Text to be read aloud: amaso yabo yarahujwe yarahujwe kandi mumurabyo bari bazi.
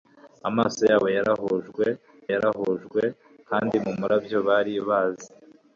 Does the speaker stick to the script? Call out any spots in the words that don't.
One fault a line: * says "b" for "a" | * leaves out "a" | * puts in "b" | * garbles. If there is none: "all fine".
all fine